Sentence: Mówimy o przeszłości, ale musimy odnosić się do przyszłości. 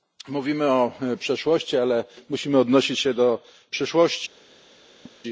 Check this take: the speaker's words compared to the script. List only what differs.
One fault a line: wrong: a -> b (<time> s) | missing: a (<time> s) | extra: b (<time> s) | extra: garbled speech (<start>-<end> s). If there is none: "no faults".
no faults